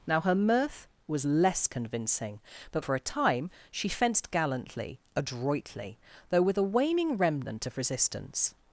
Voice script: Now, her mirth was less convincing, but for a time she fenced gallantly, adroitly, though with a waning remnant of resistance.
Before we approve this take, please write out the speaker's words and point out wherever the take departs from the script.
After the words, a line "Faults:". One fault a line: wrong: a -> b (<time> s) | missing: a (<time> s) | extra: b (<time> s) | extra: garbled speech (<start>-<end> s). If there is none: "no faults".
Now, her mirth was less convincing, but for a time she fenced gallantly, adroitly, though with a waning remnant of resistance.
Faults:
no faults